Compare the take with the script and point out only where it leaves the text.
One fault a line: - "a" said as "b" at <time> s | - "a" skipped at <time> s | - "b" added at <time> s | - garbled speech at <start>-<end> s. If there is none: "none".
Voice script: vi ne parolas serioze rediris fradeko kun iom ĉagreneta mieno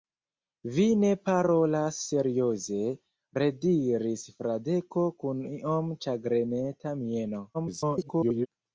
- garbled speech at 7.5-8.5 s